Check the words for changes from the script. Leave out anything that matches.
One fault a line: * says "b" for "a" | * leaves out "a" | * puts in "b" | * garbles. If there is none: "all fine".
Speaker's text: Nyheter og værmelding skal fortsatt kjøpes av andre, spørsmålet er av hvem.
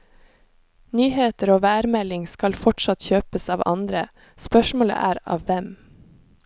all fine